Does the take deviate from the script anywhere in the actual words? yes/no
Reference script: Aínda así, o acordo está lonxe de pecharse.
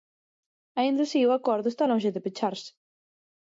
no